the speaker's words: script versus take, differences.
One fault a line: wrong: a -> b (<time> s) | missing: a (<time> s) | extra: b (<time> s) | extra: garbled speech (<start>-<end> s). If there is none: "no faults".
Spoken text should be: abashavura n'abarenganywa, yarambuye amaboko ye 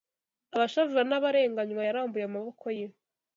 no faults